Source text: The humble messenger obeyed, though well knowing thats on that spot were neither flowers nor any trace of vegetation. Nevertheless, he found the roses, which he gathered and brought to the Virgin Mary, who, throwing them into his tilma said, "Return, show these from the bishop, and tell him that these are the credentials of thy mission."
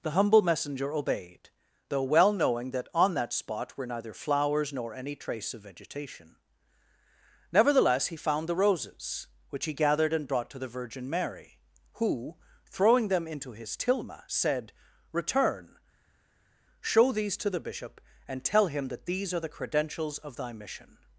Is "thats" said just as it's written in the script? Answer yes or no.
no